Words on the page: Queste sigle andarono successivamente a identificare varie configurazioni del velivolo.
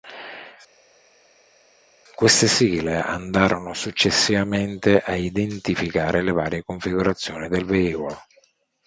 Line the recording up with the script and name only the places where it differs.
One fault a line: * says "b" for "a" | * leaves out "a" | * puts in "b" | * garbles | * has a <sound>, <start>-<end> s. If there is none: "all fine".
* puts in "le"